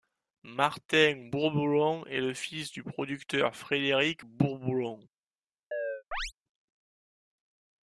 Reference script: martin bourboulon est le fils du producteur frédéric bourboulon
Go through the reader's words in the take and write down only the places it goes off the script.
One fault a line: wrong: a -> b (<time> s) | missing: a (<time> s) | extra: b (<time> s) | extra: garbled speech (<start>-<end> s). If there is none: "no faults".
no faults